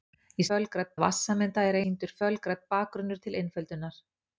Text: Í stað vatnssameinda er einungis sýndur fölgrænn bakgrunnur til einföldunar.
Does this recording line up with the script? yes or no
no